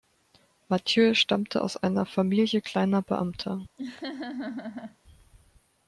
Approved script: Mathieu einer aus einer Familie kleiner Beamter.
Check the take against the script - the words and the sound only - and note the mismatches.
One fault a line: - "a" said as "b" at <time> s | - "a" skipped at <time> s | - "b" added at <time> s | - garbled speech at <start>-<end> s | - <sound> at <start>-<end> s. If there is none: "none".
- "einer" said as "stammte" at 1.1 s
- laugh at 3.8-5.0 s